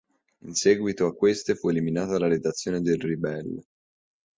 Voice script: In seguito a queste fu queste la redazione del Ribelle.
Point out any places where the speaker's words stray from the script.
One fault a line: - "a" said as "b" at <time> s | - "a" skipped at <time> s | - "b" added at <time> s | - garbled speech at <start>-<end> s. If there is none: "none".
- "queste" said as "eliminata" at 1.7 s